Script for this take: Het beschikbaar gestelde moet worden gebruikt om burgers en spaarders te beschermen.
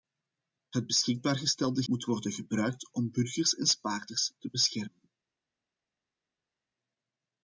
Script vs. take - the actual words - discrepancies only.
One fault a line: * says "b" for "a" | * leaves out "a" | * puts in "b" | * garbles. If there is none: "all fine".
all fine